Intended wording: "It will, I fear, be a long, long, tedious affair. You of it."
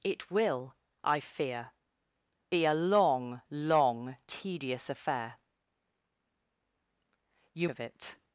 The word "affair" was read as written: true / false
true